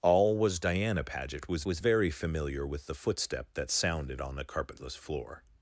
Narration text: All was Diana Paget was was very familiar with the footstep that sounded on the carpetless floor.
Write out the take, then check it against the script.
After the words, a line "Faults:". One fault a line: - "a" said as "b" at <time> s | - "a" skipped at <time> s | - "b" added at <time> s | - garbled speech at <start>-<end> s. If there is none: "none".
All was Diana Paget was was very familiar with the footstep that sounded on the carpetless floor.
Faults:
none